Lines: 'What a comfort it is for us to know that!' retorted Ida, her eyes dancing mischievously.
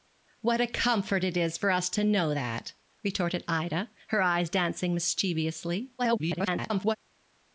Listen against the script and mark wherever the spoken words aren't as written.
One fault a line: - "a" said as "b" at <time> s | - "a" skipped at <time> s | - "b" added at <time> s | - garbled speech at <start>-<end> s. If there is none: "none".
- garbled speech at 6.0-7.0 s